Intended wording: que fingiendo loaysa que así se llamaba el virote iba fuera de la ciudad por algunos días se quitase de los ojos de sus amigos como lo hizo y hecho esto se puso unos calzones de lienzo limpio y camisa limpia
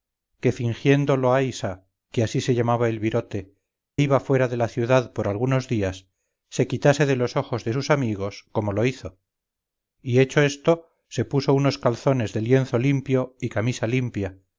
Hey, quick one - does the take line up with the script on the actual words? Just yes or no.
yes